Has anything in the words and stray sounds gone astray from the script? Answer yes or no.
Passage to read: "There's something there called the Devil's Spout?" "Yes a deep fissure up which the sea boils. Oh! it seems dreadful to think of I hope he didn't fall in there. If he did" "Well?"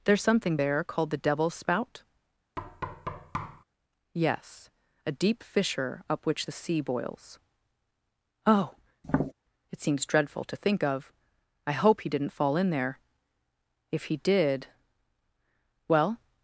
yes